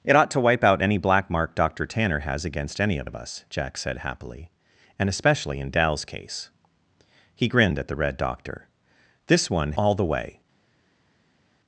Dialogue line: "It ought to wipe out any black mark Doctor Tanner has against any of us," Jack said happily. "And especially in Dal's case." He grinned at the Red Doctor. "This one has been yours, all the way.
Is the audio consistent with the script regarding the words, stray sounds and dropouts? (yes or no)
no